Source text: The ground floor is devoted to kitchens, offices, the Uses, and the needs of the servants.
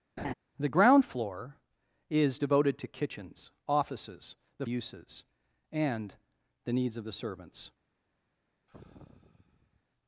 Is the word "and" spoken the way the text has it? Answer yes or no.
yes